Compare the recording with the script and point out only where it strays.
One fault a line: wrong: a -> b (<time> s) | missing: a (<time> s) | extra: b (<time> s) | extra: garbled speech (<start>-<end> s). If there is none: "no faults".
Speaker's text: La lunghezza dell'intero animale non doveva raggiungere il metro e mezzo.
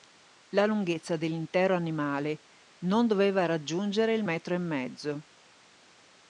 no faults